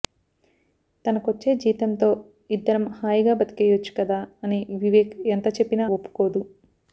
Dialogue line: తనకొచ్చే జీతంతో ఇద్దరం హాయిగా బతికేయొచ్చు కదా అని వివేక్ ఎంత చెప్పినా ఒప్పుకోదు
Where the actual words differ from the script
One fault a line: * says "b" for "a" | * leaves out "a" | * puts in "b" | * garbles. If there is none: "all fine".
all fine